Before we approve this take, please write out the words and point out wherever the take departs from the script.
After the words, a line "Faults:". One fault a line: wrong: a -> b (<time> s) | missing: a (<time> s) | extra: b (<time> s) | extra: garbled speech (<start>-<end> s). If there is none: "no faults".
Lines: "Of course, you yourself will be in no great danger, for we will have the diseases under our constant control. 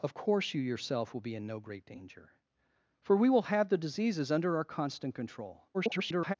"Of course, you yourself will be in no great danger, for we will have the diseases under our constant control. [garbled]
Faults:
extra: garbled speech (5.7-6.3 s)